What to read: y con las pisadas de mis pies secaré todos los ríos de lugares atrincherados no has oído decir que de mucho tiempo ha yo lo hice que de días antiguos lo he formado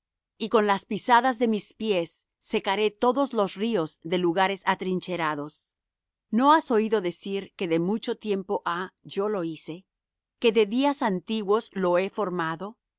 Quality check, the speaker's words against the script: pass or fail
pass